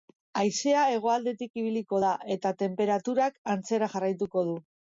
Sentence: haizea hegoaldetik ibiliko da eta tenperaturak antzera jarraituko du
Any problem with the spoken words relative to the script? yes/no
no